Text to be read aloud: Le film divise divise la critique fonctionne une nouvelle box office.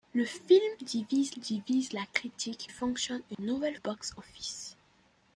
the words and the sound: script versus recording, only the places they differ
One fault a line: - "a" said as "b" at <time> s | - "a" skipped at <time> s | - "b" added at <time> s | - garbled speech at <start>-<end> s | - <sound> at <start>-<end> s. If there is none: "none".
- dropout at 3.3-3.4 s